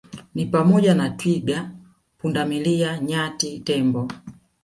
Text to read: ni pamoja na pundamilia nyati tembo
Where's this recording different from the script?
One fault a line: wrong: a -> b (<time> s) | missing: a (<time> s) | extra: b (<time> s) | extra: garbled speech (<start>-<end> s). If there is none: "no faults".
extra: twiga (1.1 s)